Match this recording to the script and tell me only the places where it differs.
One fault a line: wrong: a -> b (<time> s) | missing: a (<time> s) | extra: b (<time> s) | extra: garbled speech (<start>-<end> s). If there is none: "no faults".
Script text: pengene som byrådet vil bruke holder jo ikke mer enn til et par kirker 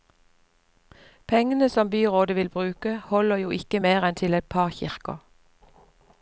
no faults